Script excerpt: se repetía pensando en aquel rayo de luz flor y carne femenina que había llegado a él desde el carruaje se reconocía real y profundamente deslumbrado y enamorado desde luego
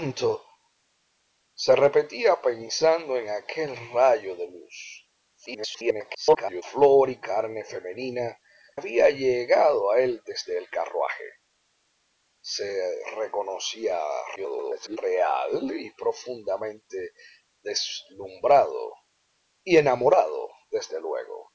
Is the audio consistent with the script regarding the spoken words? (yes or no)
no